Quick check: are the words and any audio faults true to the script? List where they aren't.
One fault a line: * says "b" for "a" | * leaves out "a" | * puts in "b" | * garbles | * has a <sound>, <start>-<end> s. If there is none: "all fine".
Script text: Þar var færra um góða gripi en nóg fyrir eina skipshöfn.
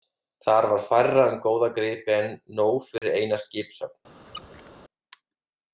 * has a dropout, 3.0-3.0 s
* has a squeak, 4.3-4.7 s